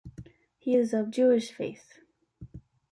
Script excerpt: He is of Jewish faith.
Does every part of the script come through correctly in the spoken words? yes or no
yes